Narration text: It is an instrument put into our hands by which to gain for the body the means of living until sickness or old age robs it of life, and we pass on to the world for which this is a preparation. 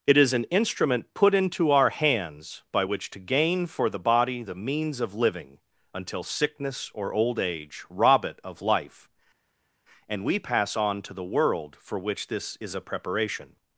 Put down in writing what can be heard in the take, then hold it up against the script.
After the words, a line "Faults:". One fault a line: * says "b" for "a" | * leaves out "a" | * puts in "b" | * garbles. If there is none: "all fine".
It is an instrument put into our hands by which to gain for the body the means of living until sickness or old age rob it of life, and we pass on to the world for which this is a preparation.
Faults:
* says "rob" for "robs"